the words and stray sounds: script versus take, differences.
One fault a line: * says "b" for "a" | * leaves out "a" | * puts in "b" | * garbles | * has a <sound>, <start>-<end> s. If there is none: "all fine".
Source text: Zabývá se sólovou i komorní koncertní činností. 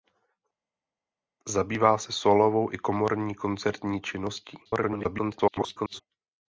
* garbles